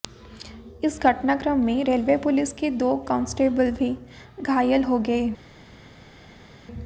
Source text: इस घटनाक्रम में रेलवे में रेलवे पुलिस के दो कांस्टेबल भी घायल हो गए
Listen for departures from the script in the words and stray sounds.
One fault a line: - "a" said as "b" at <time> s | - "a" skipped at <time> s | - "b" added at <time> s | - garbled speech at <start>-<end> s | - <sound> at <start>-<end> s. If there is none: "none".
- "में रेलवे" skipped at 2.2 s